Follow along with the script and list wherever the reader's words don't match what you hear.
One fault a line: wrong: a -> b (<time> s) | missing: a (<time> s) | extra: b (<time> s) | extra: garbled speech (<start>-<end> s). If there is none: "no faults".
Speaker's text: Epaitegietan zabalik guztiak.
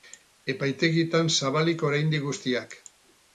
extra: oraindik (1.9 s)